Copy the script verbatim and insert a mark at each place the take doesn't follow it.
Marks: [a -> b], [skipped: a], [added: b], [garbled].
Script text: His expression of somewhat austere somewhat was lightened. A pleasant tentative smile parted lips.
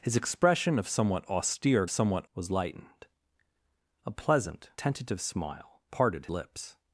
His expression of somewhat austere somewhat was lightened. A pleasant tentative smile parted lips.